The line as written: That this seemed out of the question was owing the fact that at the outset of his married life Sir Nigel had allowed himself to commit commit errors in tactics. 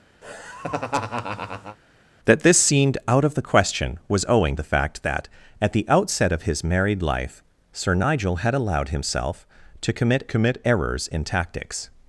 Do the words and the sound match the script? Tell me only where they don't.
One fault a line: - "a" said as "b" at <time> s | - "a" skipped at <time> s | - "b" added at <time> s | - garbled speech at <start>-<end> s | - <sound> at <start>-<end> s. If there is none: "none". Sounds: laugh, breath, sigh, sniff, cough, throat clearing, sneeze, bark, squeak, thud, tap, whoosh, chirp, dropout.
- laugh at 0.2-1.8 s